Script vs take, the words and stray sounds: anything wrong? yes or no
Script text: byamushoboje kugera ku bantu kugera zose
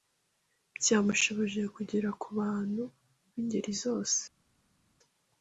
yes